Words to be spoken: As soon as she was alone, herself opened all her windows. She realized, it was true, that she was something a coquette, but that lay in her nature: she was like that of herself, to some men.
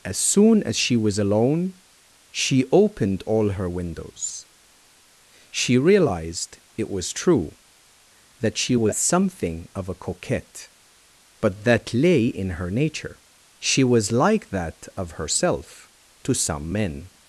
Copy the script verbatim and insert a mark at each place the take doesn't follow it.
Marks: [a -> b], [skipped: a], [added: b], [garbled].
As soon as she was alone, [herself -> she] opened all her windows. She realized, it was true, that she was something [added: of] a coquette, but that lay in her nature: she was like that of herself, to some men.